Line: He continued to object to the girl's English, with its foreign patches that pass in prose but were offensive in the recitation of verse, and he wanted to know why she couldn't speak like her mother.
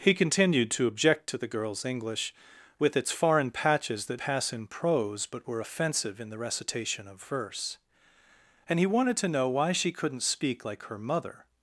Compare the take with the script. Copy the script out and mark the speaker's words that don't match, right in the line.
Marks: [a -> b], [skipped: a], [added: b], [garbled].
He continued to object to the girl's English, with its foreign patches that pass in prose but were offensive in the recitation of verse, and he wanted to know why she couldn't speak like her mother.